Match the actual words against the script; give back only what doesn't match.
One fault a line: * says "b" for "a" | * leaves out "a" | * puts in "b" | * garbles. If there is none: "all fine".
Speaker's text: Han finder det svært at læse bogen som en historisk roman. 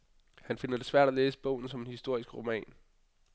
all fine